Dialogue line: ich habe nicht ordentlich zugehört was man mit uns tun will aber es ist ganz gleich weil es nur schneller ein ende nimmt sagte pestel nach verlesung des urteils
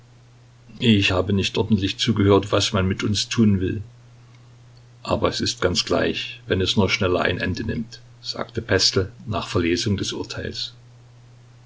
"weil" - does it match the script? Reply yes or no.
no